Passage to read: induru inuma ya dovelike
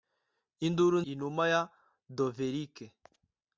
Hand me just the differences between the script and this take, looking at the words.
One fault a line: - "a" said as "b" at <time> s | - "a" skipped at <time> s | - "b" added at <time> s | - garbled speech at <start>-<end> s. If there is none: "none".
none